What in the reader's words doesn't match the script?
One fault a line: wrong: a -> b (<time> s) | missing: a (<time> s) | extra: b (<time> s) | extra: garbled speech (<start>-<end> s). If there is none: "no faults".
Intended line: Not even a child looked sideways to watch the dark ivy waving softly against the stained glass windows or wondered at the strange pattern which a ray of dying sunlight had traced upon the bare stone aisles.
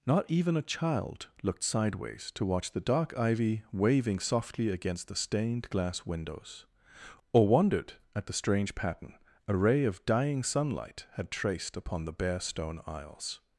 missing: which (9.2 s)